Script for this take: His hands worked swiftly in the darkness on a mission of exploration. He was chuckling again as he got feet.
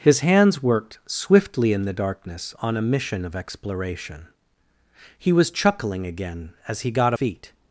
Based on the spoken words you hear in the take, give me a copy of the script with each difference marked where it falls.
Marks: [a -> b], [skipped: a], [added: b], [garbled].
His hands worked swiftly in the darkness on a mission of exploration. He was chuckling again as he got feet.